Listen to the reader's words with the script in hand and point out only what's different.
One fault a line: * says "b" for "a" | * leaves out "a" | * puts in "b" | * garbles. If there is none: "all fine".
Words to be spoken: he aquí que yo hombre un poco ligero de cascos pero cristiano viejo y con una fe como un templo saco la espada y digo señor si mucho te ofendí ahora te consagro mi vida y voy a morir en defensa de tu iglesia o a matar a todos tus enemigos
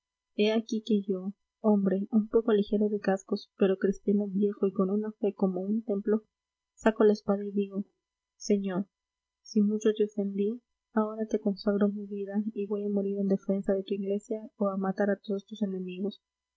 all fine